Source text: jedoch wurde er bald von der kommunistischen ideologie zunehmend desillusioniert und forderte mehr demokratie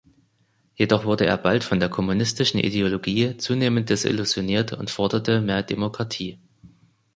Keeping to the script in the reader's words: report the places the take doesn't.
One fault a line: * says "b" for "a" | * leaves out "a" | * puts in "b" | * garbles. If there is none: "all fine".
all fine